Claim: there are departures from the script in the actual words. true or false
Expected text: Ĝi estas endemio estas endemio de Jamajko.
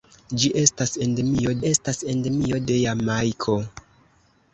false